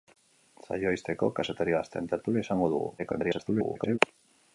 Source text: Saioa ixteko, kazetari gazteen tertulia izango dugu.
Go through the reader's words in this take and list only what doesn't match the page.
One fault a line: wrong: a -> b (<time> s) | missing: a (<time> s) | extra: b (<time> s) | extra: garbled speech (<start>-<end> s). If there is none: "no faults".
extra: garbled speech (3.0-4.0 s)